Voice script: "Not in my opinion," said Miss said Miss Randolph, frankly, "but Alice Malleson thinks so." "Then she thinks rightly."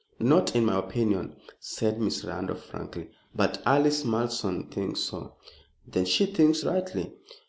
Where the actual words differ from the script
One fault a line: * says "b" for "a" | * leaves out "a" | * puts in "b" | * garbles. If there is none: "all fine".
* leaves out "said Miss"